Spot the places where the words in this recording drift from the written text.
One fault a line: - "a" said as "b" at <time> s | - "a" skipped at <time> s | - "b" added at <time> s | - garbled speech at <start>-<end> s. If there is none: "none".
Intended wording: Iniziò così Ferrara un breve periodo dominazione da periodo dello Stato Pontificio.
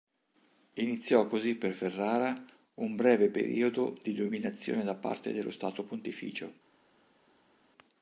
- "per" added at 1.5 s
- "di" added at 4.0 s
- "periodo" said as "parte" at 4.9 s